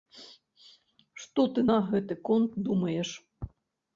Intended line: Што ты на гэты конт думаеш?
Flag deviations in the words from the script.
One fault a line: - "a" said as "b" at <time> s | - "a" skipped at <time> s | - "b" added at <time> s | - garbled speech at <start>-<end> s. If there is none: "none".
none